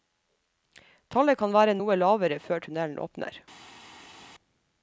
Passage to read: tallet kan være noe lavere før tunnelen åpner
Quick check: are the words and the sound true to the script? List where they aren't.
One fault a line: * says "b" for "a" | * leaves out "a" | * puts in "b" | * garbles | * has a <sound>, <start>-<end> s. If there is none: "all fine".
all fine